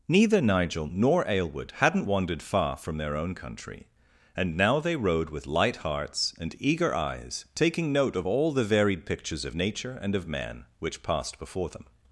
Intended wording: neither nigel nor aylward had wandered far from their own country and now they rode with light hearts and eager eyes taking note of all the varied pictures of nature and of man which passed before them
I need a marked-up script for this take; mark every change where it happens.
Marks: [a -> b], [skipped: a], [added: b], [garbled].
neither nigel nor aylward [had -> hadn't] wandered far from their own country and now they rode with light hearts and eager eyes taking note of all the varied pictures of nature and of man which passed before them